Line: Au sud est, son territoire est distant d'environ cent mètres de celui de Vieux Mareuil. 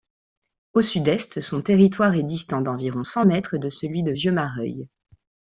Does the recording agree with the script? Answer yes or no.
yes